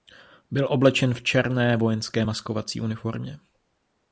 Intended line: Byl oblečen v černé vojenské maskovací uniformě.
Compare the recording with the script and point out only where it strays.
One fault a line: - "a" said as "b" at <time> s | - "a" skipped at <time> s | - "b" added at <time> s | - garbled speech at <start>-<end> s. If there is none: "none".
none